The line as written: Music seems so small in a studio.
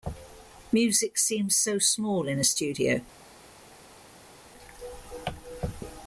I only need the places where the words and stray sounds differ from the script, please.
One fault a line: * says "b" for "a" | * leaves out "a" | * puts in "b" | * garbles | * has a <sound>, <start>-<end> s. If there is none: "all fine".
all fine